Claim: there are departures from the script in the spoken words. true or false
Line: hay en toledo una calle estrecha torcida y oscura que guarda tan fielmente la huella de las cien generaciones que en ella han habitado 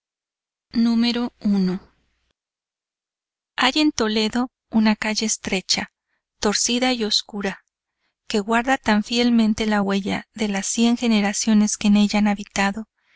false